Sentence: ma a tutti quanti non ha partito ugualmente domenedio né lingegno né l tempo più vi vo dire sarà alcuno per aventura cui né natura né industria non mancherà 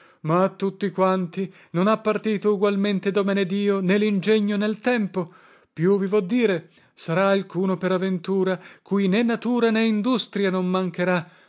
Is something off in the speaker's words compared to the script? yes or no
no